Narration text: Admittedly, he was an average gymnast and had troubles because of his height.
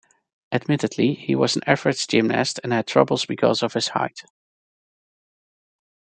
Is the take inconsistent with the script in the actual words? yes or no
no